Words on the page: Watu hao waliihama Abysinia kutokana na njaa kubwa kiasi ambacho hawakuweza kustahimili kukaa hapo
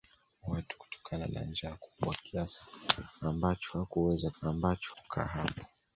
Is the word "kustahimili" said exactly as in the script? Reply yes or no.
no